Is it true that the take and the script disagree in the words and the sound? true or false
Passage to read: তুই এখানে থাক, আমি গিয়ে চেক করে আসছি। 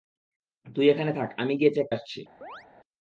true